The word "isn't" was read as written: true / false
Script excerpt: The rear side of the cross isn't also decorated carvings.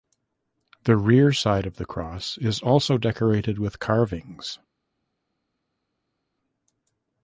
false